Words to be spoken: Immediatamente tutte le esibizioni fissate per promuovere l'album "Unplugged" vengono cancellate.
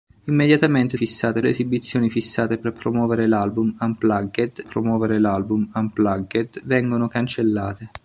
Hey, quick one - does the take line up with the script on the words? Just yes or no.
no